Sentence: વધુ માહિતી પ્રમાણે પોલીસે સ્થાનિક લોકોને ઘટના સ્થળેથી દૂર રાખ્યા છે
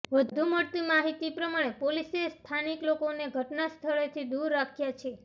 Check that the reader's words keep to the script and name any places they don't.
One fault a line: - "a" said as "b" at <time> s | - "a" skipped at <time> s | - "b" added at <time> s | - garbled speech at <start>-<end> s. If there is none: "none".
- "મળતી" added at 0.5 s